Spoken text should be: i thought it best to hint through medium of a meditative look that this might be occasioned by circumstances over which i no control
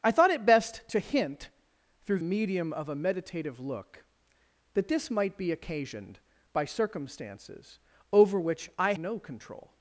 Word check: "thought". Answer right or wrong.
right